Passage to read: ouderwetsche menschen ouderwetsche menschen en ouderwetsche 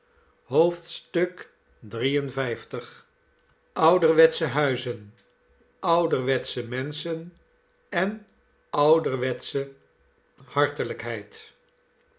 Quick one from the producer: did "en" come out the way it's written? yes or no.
yes